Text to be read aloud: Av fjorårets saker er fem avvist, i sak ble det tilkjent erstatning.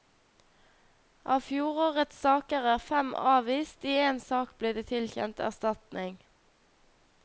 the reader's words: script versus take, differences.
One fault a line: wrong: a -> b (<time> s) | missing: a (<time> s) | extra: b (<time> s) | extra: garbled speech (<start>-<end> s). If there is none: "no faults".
extra: én (4.1 s)